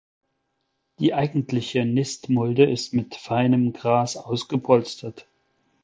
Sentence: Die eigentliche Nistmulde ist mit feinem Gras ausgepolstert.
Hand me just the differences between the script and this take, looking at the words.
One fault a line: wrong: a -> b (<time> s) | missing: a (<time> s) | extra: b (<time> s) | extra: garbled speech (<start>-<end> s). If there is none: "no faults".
no faults